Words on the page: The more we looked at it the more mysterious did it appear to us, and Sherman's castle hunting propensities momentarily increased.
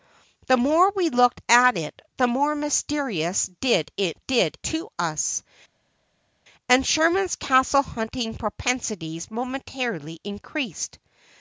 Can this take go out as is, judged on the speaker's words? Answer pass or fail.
fail